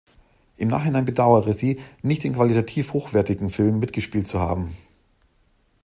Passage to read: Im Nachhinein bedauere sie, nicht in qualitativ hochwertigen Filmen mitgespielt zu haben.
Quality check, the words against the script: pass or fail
pass